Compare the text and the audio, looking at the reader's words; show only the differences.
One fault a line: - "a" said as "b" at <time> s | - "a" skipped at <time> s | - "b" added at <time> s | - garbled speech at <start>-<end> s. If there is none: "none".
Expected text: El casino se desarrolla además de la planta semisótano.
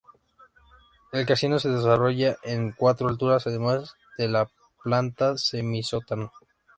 - "en cuatro alturas" added at 2.4 s